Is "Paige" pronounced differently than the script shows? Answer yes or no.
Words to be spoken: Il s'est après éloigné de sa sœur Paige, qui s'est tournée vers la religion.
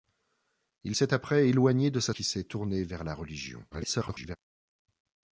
yes